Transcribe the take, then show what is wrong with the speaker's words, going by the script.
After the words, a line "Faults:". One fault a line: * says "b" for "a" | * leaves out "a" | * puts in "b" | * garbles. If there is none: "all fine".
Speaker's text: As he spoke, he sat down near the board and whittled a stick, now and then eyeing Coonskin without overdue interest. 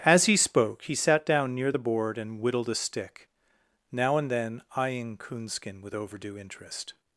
As he spoke, he sat down near the board and whittled a stick, now and then eyeing Coonskin with overdue interest.
Faults:
* says "with" for "without"